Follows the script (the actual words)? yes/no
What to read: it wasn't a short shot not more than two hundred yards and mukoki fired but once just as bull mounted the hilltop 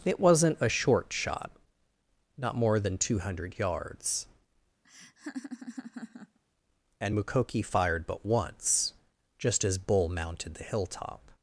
yes